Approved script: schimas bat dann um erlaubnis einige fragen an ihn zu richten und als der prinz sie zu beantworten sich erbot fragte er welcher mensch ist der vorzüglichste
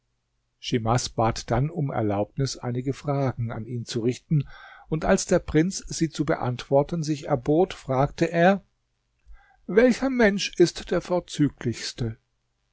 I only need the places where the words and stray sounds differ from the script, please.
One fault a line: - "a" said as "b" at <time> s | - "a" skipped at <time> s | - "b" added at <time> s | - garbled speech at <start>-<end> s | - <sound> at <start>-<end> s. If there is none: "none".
none